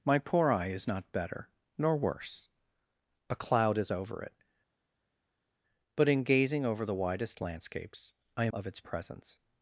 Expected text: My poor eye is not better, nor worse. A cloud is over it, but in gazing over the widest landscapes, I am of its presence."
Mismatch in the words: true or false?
false